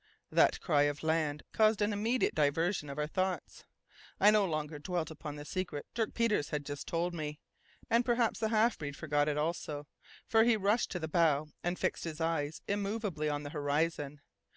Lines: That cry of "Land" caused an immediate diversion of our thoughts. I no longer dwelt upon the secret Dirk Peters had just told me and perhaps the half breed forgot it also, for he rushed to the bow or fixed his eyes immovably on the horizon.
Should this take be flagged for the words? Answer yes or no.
yes